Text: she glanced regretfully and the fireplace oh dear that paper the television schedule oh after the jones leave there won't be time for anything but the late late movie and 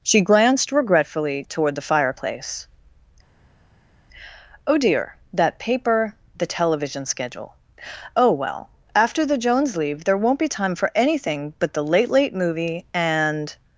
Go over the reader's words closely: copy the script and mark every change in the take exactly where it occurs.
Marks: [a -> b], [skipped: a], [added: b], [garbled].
she glanced regretfully [and -> toward] the fireplace oh dear that paper the television schedule oh [added: well] after the jones leave there won't be time for anything but the late late movie and